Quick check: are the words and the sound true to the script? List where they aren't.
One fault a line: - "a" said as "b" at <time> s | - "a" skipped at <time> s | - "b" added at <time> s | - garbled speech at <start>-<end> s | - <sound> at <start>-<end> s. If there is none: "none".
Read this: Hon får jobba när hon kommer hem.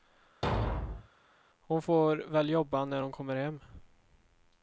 - thud at 0.4-1.1 s
- "väl" added at 2.2 s